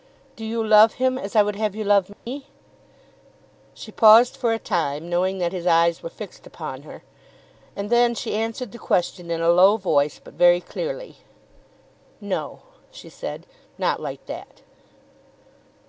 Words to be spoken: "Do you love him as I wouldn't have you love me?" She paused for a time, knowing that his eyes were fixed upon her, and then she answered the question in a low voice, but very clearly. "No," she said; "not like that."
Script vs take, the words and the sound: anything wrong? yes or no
yes